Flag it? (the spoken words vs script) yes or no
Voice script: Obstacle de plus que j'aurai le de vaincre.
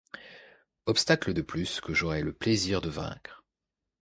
yes